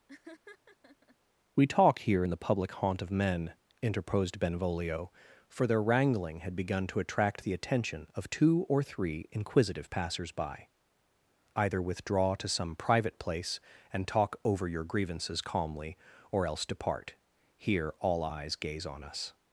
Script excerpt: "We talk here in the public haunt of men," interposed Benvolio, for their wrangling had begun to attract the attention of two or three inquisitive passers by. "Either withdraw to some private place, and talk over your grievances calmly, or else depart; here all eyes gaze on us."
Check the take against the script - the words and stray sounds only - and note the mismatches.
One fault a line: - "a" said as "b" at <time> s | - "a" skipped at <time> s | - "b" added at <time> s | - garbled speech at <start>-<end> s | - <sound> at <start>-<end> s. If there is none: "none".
- laugh at 0.1-1.2 s